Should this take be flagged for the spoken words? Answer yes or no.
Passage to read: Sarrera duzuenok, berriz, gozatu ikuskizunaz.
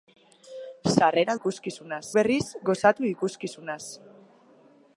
yes